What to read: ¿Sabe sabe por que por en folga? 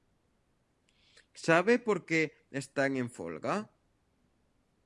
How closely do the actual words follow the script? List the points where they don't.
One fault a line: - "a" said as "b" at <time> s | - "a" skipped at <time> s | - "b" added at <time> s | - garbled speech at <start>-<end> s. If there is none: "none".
- "sabe" skipped at 1.8 s
- "por" said as "están" at 2.5 s